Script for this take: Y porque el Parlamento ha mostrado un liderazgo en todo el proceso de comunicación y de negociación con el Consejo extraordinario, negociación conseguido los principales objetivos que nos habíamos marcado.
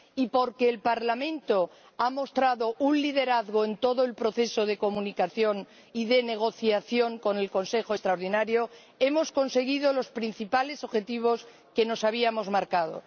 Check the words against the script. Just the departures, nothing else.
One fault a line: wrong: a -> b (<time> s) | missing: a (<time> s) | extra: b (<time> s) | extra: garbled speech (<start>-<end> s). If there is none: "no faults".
wrong: negociación -> hemos (9.0 s)